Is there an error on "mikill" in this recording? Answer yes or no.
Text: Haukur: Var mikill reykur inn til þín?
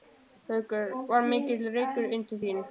no